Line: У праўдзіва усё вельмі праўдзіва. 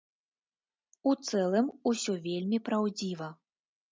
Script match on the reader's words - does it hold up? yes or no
no